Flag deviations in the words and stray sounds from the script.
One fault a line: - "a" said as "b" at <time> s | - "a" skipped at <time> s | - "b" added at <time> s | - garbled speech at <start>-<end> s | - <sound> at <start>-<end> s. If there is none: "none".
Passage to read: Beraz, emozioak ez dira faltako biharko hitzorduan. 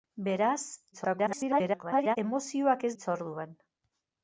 - garbled speech at 0.9-2.2 s
- "dira faltako biharko" skipped at 2.9 s